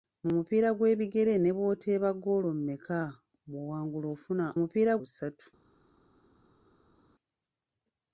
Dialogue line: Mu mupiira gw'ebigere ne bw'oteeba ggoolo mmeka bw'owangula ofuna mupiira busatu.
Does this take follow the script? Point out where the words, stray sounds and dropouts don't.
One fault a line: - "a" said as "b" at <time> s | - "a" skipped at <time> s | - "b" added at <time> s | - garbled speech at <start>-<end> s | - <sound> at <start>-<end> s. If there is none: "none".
none